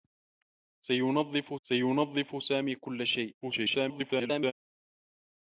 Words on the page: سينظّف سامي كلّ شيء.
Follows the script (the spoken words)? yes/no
no